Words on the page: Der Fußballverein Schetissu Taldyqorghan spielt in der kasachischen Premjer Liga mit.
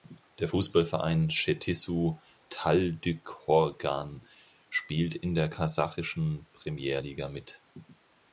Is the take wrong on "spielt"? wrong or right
right